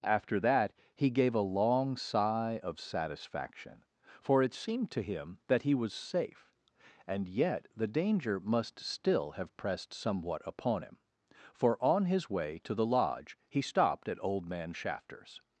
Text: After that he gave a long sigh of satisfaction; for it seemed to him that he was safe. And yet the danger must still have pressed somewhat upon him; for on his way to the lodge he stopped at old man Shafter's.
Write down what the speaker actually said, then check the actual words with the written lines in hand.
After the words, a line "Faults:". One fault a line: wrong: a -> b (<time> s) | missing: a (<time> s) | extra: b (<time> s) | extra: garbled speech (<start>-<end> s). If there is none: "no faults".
After that he gave a long sigh of satisfaction; for it seemed to him that he was safe. And yet the danger must still have pressed somewhat upon him; for on his way to the lodge he stopped at old man Shafter's.
Faults:
no faults